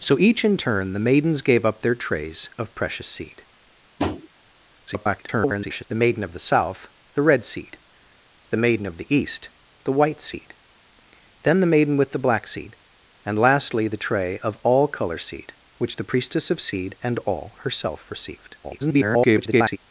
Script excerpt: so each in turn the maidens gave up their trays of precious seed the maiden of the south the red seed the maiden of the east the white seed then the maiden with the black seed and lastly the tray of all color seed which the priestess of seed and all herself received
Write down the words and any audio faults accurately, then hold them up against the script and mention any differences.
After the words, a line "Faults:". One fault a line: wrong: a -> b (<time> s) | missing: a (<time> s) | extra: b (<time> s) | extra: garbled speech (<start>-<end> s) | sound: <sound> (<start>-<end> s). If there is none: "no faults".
so each in turn the maidens gave up their trays of precious seed [garbled] the maiden of the south the red seed the maiden of the east the white seed then the maiden with the black seed and lastly the tray of all color seed which the priestess of seed and all herself received [garbled]
Faults:
sound: tap (4.0-4.3 s)
extra: garbled speech (4.9-5.8 s)
extra: garbled speech (18.6-19.8 s)